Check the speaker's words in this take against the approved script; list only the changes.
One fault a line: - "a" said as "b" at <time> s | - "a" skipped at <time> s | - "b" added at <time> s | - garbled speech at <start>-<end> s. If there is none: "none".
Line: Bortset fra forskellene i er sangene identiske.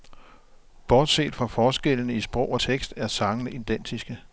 - "sprog og tekst" added at 2.2 s